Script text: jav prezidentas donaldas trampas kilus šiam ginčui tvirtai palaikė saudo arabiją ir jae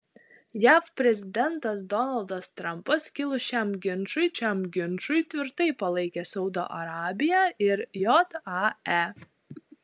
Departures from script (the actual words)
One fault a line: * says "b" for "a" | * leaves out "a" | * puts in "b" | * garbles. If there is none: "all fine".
* puts in "šiam ginčui"